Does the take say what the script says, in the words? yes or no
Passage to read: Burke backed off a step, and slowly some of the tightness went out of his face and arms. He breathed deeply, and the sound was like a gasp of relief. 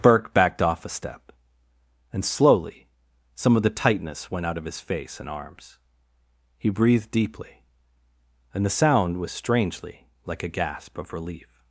no